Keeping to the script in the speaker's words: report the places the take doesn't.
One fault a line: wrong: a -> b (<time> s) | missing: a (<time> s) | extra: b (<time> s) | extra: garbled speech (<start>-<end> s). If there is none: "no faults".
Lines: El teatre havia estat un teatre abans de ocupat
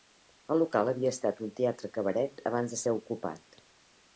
wrong: teatre -> local (0.6 s)
extra: cabaret (2.0 s)
extra: ser (2.8 s)